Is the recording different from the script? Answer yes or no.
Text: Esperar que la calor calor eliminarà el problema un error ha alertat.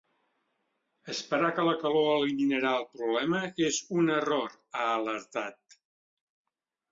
yes